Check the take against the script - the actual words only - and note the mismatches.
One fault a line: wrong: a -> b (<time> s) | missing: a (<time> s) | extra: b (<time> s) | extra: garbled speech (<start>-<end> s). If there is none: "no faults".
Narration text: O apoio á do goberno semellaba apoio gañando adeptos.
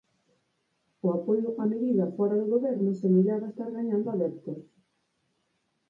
extra: medida fóra (1.7 s)
wrong: apoio -> estar (3.5 s)